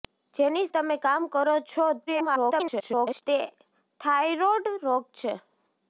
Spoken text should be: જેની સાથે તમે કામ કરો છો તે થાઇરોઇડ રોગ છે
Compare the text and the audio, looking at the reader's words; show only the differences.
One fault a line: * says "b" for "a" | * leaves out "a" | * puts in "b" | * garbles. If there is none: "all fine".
* leaves out "સાથે"
* garbles